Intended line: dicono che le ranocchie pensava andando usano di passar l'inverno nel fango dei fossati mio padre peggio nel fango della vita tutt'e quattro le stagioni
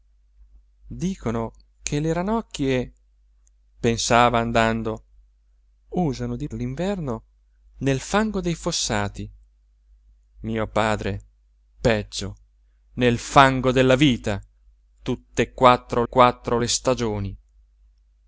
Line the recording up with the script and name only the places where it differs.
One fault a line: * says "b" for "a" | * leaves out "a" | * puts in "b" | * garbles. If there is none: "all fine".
* leaves out "passar"
* puts in "quattro"